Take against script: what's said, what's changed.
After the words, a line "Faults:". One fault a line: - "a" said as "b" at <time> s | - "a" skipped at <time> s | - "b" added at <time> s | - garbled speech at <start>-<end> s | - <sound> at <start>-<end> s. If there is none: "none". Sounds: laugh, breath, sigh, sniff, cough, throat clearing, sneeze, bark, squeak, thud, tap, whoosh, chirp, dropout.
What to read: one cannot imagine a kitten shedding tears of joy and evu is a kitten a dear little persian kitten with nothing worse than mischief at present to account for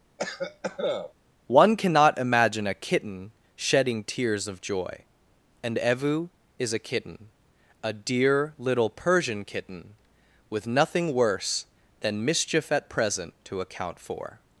one cannot imagine a kitten shedding tears of joy and evu is a kitten a dear little persian kitten with nothing worse than mischief at present to account for
Faults:
- cough at 0.2-1.1 s